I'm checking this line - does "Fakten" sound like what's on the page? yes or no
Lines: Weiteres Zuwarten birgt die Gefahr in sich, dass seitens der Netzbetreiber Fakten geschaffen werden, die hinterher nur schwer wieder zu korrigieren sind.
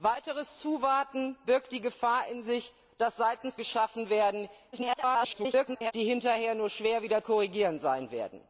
no